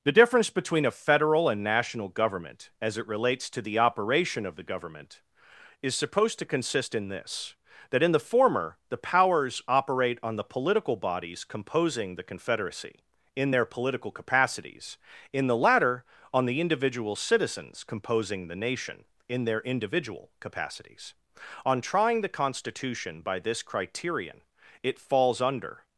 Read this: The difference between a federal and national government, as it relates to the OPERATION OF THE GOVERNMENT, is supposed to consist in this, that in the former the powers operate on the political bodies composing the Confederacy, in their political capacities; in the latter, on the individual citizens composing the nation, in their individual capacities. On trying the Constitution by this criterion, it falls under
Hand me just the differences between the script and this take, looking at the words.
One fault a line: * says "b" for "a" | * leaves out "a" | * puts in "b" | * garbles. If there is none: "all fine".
all fine